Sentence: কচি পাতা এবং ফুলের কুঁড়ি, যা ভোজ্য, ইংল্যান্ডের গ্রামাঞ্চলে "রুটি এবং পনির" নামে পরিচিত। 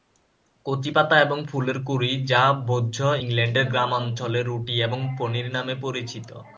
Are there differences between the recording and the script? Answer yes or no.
no